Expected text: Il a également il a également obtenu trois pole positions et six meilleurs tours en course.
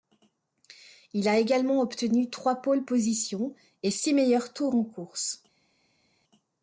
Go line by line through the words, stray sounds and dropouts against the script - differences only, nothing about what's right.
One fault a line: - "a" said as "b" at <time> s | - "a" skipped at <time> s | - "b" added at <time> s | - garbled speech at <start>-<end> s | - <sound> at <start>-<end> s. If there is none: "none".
- "il a également" skipped at 1.8 s